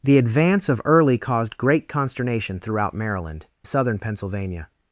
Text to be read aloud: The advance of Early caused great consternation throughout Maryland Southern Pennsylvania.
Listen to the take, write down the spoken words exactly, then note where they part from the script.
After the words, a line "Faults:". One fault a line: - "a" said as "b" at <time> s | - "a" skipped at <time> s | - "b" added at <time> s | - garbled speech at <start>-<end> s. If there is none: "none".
The advance of Early caused great consternation throughout Maryland Southern Pennsylvania.
Faults:
none